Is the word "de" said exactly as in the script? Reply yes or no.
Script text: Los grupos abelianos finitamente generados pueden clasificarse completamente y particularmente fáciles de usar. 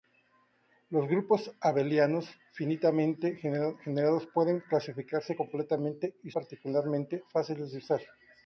yes